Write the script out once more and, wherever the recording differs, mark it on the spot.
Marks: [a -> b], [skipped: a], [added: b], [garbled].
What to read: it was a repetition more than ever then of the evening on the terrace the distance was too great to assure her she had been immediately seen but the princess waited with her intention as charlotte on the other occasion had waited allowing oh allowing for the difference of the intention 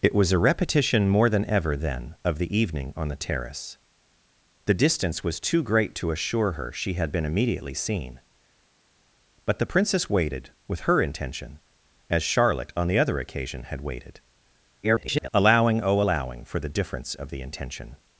it was a repetition more than ever then of the evening on the terrace the distance was too great to assure her she had been immediately seen but the princess waited with her intention as charlotte on the other occasion had waited [garbled] allowing oh allowing for the difference of the intention